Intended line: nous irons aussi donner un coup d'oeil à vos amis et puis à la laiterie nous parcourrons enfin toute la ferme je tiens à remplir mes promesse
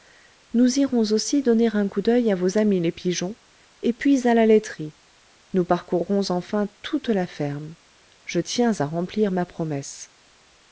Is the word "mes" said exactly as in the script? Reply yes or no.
no